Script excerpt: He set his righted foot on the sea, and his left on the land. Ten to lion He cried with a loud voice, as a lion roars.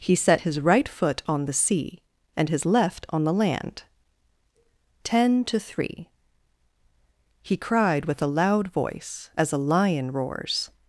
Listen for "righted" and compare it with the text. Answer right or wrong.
wrong